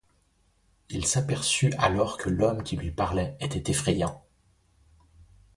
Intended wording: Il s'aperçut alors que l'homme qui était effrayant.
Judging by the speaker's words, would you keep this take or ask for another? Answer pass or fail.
fail